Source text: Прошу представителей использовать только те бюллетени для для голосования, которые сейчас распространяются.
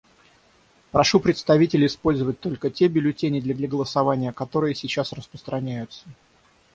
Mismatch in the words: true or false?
false